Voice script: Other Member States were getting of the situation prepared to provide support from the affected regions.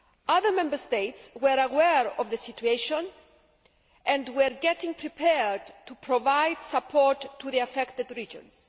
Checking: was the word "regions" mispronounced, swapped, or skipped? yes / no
no